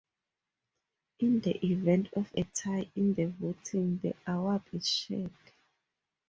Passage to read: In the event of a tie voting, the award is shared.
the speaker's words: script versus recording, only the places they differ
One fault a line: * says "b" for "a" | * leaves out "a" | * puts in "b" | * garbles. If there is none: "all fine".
* puts in "in the"